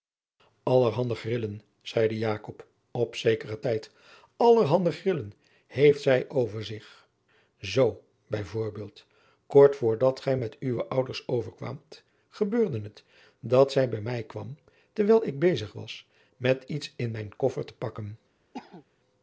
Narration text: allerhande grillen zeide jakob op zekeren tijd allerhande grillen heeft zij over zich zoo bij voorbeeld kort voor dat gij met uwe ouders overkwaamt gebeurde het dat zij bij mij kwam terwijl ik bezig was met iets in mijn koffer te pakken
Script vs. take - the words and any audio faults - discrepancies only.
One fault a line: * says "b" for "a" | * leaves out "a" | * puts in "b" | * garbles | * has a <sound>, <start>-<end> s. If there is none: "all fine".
* has a cough, 18.5-18.9 s